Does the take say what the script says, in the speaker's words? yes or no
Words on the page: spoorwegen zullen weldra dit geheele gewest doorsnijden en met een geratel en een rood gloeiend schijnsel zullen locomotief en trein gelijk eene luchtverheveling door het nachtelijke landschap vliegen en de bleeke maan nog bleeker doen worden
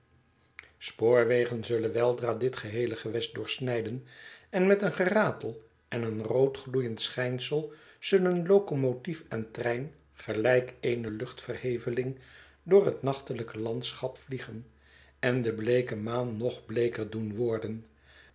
yes